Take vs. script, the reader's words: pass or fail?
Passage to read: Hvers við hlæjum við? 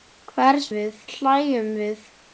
pass